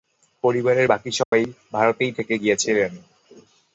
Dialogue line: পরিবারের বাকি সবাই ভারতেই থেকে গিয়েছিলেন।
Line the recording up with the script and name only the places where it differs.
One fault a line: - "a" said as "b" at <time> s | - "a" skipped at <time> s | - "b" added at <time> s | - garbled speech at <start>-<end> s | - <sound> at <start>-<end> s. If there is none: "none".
- dropout at 1.2-1.3 s